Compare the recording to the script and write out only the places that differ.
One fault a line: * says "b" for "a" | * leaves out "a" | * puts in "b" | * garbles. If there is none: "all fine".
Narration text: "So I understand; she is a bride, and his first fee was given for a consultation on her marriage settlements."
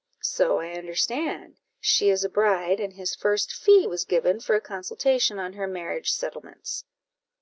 all fine